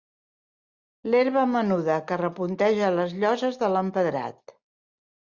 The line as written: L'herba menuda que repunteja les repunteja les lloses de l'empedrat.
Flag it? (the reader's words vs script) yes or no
yes